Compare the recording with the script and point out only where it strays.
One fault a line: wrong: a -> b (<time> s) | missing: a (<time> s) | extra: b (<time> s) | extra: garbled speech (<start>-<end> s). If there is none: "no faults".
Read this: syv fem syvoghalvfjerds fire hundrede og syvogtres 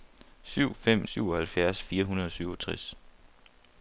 no faults